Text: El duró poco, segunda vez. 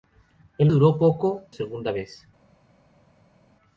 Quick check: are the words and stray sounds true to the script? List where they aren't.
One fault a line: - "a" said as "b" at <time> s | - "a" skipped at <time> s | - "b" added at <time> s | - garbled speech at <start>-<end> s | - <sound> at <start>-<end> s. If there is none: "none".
none